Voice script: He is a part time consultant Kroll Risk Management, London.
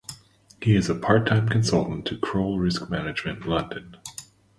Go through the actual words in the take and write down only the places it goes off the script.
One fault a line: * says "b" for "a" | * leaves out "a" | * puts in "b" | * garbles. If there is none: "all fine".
* puts in "to"